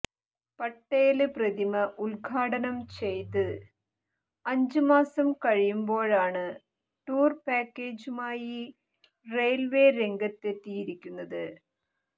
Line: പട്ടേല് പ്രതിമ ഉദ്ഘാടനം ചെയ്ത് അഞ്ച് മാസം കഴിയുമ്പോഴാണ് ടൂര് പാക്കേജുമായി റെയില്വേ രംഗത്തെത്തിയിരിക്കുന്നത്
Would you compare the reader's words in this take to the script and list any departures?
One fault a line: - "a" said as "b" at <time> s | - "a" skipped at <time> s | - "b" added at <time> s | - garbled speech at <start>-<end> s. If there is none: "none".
none